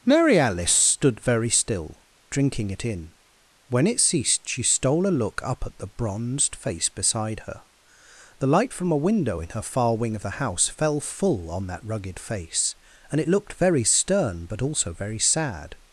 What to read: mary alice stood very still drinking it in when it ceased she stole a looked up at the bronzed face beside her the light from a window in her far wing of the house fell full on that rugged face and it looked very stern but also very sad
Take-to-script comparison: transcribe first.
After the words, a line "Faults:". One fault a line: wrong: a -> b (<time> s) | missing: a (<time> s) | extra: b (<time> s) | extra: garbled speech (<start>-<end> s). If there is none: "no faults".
mary alice stood very still drinking it in when it ceased she stole a look up at the bronzed face beside her the light from a window in her far wing of the house fell full on that rugged face and it looked very stern but also very sad
Faults:
wrong: looked -> look (5.1 s)